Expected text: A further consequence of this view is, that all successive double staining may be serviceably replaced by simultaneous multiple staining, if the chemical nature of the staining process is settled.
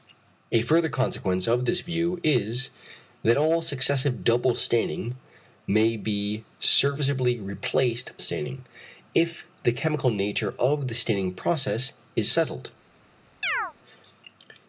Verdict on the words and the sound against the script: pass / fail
fail